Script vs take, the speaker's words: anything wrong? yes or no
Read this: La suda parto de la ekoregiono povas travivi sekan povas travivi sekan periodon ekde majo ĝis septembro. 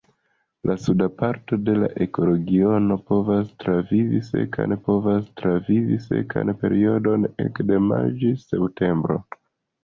no